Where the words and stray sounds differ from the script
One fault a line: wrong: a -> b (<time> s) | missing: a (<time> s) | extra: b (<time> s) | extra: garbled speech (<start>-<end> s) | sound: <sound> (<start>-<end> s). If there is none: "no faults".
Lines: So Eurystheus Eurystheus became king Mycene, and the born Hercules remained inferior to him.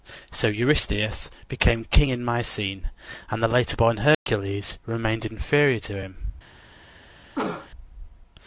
missing: Eurystheus (1.3 s)
extra: in (2.1 s)
extra: later (3.5 s)
sound: dropout (4.1-4.3 s)
sound: cough (7.4-7.7 s)